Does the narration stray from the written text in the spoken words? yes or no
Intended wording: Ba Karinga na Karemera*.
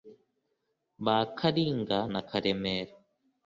no